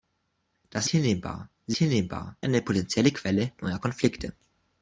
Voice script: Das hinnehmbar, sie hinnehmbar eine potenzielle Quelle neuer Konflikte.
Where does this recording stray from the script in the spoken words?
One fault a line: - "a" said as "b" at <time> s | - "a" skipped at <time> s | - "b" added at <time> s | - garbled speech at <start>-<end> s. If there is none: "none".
none